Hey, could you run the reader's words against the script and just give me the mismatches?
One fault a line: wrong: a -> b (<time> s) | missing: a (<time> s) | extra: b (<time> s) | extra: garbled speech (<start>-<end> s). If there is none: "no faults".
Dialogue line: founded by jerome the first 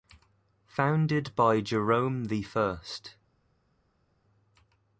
no faults